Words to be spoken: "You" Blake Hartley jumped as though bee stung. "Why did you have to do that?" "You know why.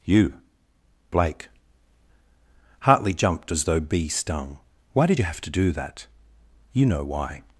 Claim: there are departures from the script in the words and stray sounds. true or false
false